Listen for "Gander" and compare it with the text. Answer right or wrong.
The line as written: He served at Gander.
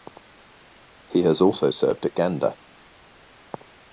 right